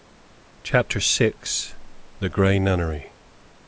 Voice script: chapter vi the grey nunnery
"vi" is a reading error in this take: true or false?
false